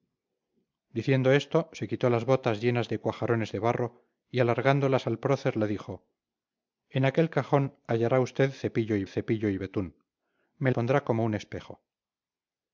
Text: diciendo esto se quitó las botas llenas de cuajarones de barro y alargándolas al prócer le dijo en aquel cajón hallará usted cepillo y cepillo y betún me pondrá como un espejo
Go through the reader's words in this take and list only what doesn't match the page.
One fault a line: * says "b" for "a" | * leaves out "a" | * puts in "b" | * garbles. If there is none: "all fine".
all fine